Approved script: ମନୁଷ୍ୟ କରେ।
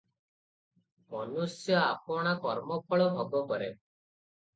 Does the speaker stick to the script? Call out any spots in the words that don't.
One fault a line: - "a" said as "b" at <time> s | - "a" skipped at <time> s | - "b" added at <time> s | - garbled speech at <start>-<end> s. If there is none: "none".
- "ଆପଣା କର୍ମଫଳ ଭୋଗ" added at 1.8 s